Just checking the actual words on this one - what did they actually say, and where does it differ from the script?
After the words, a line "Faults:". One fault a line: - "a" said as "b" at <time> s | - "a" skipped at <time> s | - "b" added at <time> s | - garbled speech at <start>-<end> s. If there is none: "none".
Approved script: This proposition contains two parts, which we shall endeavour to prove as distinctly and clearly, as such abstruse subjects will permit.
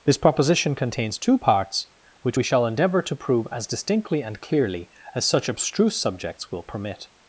This proposition contains two parts, which we shall endeavour to prove as distinctly and clearly, as such abstruse subjects will permit.
Faults:
none